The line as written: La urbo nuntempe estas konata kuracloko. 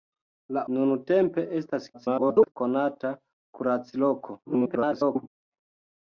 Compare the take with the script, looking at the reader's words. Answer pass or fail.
fail